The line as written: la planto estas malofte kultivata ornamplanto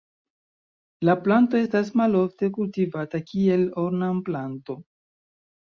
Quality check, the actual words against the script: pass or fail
fail